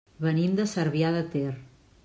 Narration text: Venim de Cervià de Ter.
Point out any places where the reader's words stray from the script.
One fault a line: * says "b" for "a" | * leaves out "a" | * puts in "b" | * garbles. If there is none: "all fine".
all fine